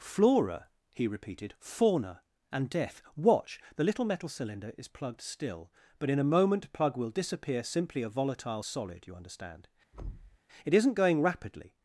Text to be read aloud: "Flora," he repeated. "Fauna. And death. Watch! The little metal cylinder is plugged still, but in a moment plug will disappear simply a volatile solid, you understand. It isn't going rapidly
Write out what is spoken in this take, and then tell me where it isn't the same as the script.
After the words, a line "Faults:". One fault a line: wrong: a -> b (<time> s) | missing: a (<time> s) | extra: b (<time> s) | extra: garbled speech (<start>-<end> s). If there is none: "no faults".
"Flora," he repeated. "Fauna. And death. Watch! The little metal cylinder is plugged still, but in a moment plug will disappear simply a volatile solid, you understand. It isn't going rapidly
Faults:
no faults